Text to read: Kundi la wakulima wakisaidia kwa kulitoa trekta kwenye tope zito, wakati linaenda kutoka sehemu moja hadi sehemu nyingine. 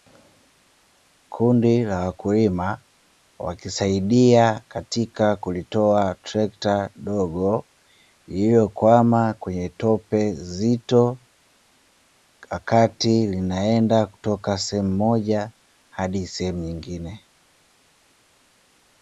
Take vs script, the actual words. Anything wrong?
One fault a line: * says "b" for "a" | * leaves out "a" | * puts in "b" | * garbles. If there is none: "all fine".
* says "katika" for "kwa"
* puts in "dogo lililokwama"